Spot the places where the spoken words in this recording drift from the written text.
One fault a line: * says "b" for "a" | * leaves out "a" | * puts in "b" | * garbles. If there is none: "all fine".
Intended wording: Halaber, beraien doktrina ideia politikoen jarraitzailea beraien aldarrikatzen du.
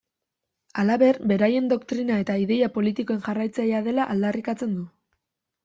* puts in "eta"
* says "dela" for "beraien"